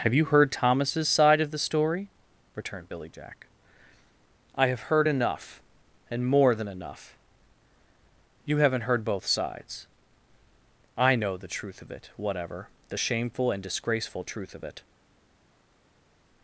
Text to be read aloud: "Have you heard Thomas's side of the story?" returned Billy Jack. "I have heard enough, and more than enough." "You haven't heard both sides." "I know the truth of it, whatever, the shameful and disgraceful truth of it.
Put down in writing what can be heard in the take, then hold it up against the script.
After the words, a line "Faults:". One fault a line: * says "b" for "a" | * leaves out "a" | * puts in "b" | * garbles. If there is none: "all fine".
"Have you heard Thomas's side of the story?" returned Billy Jack. "I have heard enough, and more than enough." "You haven't heard both sides." "I know the truth of it, whatever, the shameful and disgraceful truth of it.
Faults:
all fine